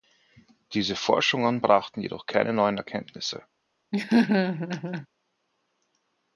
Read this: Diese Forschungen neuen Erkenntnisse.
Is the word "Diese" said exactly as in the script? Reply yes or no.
yes